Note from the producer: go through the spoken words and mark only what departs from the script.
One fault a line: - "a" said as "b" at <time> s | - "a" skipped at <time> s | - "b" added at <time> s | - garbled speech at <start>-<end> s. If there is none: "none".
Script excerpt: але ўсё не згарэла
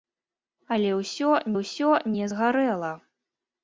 - "ўсё" added at 1.6 s